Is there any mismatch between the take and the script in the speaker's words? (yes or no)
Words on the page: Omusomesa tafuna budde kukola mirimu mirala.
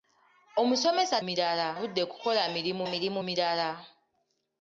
yes